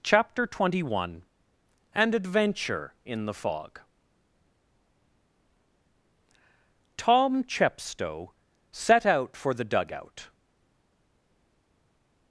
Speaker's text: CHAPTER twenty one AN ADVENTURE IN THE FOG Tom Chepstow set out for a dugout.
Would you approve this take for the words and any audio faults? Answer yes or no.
no